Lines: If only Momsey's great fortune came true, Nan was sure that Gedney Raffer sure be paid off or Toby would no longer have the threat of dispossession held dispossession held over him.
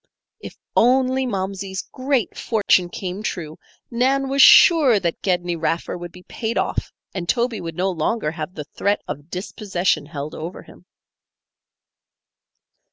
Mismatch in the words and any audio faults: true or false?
true